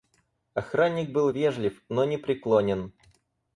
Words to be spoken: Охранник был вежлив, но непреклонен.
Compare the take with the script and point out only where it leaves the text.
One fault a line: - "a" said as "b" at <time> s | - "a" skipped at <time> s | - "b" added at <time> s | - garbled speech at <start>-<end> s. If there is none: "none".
none